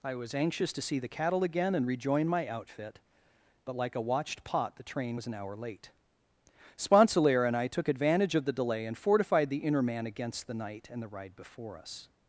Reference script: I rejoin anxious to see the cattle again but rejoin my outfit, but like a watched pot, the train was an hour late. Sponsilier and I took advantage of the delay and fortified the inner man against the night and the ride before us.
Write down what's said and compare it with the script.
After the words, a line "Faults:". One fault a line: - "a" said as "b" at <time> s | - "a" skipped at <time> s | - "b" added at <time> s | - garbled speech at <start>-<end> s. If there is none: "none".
I was anxious to see the cattle again and rejoin my outfit, but like a watched pot, the train was an hour late. Sponsilier and I took advantage of the delay and fortified the inner man against the night and the ride before us.
Faults:
- "rejoin" said as "was" at 0.1 s
- "but" said as "and" at 1.8 s